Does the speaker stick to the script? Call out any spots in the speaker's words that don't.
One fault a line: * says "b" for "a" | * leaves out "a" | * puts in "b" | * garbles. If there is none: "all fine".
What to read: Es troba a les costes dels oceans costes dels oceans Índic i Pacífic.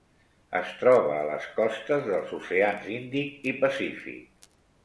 * leaves out "costes dels oceans"